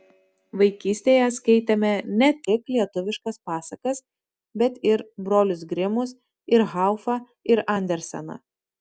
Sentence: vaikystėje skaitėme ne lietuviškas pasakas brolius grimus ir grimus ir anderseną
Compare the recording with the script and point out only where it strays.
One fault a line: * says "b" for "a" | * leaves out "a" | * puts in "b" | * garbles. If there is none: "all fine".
* puts in "tik"
* puts in "bet ir"
* says "haufą" for "grimus"